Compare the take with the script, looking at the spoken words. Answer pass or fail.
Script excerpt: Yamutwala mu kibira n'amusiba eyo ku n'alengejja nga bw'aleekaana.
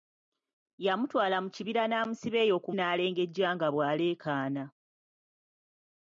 pass